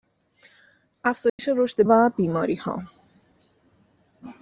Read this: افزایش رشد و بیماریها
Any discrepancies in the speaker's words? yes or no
no